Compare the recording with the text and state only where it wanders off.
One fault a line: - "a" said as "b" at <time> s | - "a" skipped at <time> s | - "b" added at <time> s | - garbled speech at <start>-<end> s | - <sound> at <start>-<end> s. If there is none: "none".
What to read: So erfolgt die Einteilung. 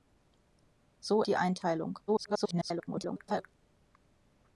- "erfolgt" skipped at 1.2 s
- garbled speech at 2.1-3.6 s